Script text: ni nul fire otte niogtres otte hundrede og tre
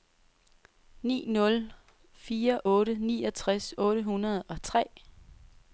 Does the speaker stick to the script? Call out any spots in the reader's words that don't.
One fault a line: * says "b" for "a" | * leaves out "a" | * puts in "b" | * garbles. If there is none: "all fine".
all fine